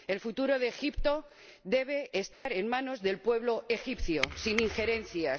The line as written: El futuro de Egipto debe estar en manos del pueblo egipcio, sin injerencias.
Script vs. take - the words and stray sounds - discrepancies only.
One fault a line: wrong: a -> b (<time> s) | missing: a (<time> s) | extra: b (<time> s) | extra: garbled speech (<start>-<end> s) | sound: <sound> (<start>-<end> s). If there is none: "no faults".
sound: dropout (2.3-2.5 s)